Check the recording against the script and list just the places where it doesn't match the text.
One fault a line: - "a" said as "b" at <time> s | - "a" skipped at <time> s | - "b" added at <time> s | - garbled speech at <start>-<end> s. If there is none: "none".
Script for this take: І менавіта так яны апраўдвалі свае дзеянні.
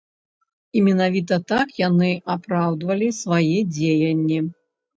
none